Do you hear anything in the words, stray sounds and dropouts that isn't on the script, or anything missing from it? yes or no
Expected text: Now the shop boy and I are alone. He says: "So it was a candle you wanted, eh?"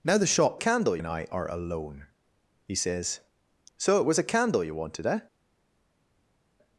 yes